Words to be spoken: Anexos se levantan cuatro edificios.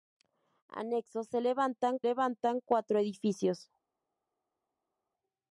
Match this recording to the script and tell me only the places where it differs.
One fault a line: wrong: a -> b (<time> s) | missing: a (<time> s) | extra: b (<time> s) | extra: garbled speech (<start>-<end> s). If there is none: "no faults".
extra: levantan (2.0 s)